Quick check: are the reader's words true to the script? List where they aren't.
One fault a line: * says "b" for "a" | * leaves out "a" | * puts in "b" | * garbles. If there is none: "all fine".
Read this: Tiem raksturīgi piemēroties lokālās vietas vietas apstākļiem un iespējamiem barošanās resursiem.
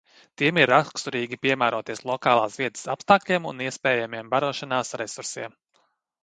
* puts in "ir"
* leaves out "vietas"